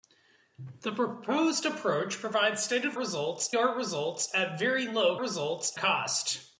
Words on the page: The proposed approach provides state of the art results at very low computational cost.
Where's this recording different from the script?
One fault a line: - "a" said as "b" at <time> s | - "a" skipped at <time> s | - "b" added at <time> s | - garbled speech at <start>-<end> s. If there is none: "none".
- "the" said as "results" at 3.0 s
- "computational" said as "results" at 5.2 s